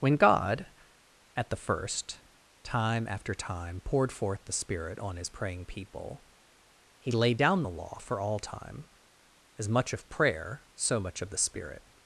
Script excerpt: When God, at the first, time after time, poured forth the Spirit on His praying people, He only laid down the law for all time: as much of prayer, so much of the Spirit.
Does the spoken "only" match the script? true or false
false